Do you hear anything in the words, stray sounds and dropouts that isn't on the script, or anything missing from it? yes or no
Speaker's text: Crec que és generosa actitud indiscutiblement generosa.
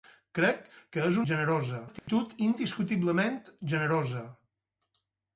yes